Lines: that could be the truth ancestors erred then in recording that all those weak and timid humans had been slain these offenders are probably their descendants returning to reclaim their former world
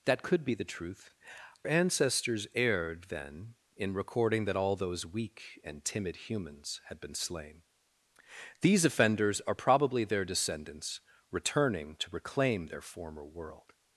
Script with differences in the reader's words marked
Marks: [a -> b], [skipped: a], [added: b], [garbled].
that could be the truth ancestors erred then in recording that all those weak and timid humans had been slain these offenders are probably their descendants returning to reclaim their former world